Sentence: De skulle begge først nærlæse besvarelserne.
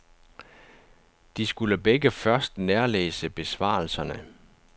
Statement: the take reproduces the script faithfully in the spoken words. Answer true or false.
true